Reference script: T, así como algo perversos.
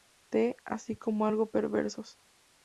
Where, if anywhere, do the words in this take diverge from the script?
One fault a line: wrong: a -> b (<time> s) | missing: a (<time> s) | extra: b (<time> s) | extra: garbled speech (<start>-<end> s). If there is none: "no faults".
no faults